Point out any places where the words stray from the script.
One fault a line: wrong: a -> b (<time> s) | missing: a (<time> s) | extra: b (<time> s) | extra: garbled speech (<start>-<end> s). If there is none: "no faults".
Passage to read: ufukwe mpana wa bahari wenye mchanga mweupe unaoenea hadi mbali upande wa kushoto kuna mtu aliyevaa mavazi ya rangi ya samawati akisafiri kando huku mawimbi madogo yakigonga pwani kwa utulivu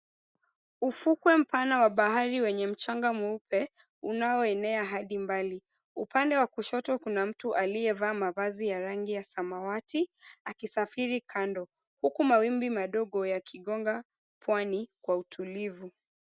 no faults